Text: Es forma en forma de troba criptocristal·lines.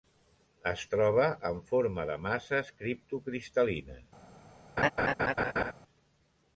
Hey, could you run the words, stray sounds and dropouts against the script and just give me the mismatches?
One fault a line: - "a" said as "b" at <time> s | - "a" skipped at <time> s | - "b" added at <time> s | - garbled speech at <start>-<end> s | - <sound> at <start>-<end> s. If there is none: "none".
- "forma" said as "troba" at 0.9 s
- "troba" said as "masses" at 2.2 s
- laugh at 4.8-5.7 s